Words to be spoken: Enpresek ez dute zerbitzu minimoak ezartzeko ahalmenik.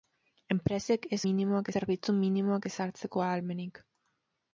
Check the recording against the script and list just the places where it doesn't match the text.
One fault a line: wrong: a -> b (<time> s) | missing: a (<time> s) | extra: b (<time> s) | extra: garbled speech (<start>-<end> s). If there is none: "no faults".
wrong: dute -> minimoak (1.2 s)